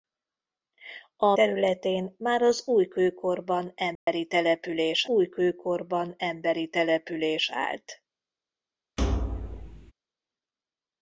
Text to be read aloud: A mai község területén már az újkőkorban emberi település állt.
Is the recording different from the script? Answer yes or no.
yes